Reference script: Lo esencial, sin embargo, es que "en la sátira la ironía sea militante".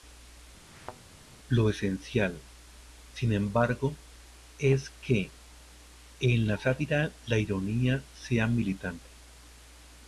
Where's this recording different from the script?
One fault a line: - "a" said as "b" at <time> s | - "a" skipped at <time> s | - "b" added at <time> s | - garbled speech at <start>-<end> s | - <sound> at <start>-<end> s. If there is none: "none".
- thud at 0.7-1.0 s